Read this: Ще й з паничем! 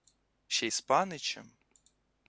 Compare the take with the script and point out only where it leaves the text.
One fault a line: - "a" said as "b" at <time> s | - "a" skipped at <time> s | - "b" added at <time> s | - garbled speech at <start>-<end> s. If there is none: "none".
none